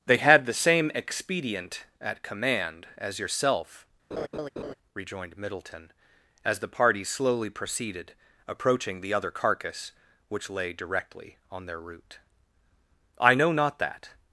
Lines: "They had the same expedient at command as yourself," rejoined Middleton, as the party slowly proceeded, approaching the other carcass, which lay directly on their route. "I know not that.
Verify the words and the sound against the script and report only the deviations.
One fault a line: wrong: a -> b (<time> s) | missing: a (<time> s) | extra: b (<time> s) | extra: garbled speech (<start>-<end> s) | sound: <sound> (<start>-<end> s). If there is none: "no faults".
sound: laugh (4.1-4.7 s)